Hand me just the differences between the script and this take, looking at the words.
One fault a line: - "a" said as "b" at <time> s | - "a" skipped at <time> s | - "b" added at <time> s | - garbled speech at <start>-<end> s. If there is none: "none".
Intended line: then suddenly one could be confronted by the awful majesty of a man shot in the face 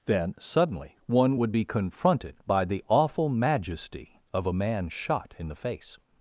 - "could" said as "would" at 1.4 s